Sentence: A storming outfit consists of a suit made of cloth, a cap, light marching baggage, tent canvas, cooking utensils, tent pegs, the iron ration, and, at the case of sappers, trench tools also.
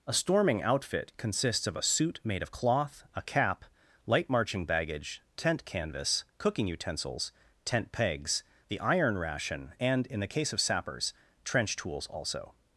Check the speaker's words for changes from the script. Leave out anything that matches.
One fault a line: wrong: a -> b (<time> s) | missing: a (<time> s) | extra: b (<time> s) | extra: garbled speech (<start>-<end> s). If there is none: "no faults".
wrong: at -> in (10.1 s)